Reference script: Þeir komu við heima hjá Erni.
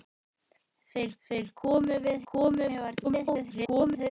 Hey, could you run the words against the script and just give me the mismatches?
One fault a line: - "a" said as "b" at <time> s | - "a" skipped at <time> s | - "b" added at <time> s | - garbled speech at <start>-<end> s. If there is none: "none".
- "þeir" added at 1.3 s
- "heima" said as "komu" at 2.2 s
- garbled speech at 3.0-4.1 s